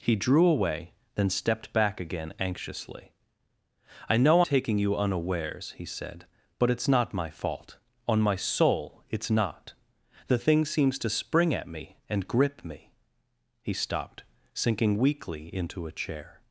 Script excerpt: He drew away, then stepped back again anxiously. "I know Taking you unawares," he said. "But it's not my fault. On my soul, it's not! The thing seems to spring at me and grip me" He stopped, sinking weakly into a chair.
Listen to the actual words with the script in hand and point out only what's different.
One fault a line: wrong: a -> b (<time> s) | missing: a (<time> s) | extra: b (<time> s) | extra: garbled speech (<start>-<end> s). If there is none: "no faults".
no faults